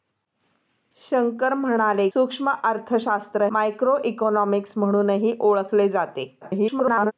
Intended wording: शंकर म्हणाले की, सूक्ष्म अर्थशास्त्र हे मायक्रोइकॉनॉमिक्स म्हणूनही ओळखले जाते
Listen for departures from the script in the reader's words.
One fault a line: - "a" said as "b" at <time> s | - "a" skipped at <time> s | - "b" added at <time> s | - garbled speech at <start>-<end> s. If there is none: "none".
- "की" skipped at 2.1 s
- "हे" skipped at 3.5 s
- garbled speech at 6.4-7.1 s